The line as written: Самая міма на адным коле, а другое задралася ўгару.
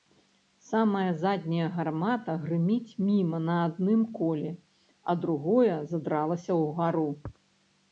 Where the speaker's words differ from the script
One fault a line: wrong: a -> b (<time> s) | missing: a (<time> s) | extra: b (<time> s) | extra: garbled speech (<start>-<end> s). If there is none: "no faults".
extra: задняя гармата грыміць (1.2 s)